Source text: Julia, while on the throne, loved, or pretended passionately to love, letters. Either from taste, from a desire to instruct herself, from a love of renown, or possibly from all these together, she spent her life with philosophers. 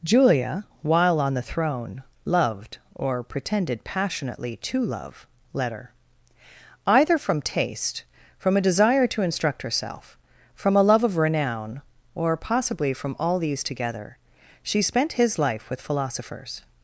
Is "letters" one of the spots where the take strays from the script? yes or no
yes